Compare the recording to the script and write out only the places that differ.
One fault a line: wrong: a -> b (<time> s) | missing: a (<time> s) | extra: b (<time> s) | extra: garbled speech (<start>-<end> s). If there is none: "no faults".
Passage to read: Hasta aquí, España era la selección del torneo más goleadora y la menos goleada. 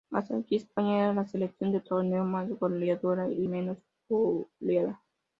missing: la (3.5 s)